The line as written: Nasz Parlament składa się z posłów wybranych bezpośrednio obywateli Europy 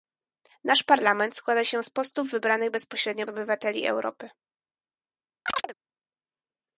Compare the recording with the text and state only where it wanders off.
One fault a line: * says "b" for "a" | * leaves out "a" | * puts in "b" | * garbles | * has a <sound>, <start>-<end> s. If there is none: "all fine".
* has a chirp, 5.5-5.7 s